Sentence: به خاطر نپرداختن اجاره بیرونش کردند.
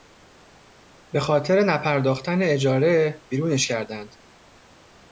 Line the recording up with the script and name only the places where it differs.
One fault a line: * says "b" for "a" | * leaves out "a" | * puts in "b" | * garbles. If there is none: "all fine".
all fine